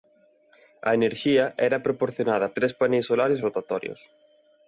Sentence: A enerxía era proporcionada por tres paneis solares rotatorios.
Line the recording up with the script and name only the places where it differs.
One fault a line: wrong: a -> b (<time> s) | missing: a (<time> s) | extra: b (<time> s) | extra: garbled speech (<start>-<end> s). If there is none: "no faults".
missing: por (2.5 s)